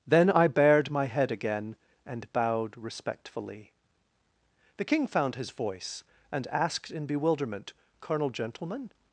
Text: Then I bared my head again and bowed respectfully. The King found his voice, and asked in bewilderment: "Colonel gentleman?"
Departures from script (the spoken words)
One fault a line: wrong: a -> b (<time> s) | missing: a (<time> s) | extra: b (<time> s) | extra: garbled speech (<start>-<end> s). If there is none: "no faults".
no faults